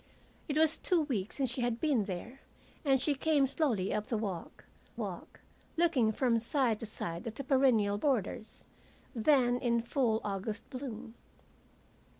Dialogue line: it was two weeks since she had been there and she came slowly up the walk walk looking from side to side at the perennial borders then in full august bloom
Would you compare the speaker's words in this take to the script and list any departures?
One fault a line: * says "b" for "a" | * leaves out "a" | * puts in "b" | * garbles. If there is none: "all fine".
all fine